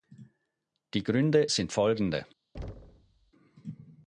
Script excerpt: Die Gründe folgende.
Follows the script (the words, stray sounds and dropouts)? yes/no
no